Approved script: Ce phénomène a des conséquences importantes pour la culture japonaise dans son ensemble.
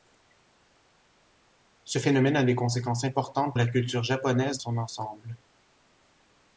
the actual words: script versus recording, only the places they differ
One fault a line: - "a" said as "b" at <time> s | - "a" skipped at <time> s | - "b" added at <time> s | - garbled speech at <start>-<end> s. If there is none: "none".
- "pour" skipped at 3.6 s
- "dans" skipped at 4.6 s